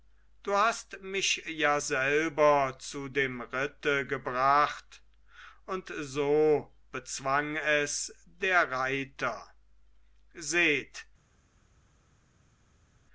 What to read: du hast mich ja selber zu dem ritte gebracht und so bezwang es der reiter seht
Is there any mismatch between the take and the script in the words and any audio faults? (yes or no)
no